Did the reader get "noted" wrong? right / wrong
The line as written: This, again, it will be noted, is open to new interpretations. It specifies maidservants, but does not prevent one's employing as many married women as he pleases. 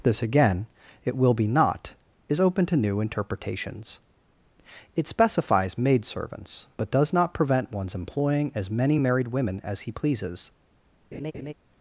wrong